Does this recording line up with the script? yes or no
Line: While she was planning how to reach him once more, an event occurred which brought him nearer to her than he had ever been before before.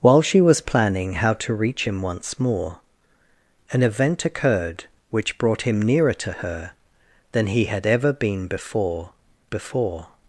yes